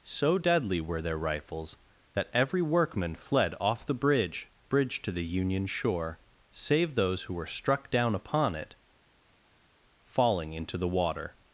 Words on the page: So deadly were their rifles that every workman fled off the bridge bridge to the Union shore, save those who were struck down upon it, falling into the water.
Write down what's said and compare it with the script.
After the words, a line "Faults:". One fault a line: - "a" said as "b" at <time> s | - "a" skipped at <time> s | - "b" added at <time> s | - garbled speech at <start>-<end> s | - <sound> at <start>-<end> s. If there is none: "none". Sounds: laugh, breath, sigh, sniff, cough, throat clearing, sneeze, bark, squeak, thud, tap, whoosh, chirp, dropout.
So deadly were their rifles that every workman fled off the bridge bridge to the Union shore, save those who were struck down upon it, falling into the water.
Faults:
none